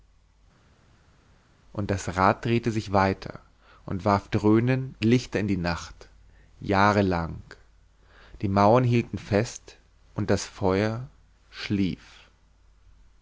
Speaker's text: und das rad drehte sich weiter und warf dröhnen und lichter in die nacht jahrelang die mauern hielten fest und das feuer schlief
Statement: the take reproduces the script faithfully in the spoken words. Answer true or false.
false